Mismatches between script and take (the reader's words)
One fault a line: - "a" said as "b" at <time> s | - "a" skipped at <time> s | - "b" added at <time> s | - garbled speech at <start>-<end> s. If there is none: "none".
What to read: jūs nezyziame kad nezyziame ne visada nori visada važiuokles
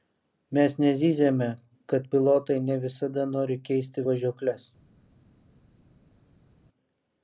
- "jūs" said as "mes" at 0.6 s
- "nezyziame" said as "pilotai" at 2.1 s
- "visada" said as "keisti" at 3.7 s